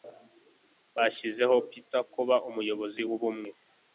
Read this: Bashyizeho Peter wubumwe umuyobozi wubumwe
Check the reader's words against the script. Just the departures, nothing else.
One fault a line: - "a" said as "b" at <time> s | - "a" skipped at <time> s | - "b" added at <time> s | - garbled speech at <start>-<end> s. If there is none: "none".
- "wubumwe" said as "kuba" at 2.1 s